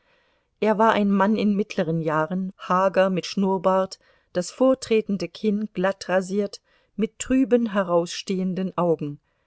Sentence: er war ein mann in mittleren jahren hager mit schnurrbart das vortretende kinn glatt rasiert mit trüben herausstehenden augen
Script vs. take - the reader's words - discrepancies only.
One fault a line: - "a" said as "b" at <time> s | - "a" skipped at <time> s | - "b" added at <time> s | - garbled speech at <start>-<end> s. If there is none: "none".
none